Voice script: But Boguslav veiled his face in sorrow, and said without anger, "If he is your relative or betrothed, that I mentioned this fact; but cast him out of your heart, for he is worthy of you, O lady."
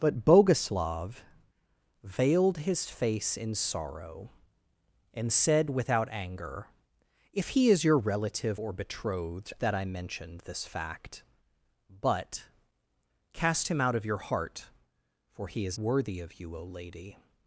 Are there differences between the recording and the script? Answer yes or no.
no